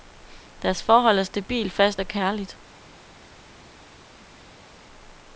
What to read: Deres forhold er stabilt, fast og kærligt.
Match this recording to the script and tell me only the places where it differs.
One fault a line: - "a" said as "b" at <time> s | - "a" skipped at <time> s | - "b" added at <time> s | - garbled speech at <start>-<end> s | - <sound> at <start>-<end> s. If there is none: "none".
none